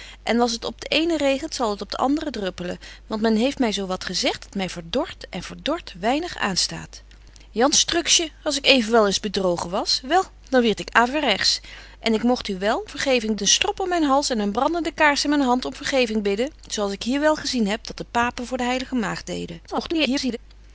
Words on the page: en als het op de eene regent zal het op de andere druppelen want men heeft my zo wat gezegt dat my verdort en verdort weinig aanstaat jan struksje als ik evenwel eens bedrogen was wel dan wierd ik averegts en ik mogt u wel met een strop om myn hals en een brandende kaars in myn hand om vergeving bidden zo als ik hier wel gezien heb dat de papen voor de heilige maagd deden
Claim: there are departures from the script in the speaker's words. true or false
true